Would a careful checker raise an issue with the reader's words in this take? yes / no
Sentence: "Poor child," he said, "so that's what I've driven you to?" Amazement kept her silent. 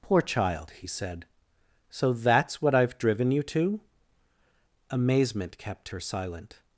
no